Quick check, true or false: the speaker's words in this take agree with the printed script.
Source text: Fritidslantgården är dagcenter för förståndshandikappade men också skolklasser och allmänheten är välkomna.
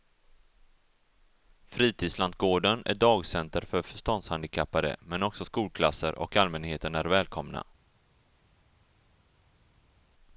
true